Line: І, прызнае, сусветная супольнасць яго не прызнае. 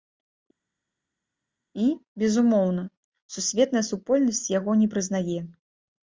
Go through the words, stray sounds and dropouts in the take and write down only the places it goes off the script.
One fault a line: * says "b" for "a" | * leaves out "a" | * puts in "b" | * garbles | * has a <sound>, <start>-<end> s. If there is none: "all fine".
* says "безумоўна" for "прызнае"